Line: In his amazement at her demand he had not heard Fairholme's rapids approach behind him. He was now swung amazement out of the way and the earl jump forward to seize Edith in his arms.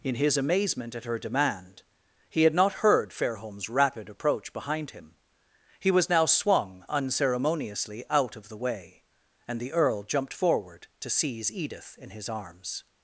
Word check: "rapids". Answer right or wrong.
wrong